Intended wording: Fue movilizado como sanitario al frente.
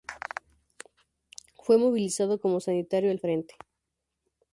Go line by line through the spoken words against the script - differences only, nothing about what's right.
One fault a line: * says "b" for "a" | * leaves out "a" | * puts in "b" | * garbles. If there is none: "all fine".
all fine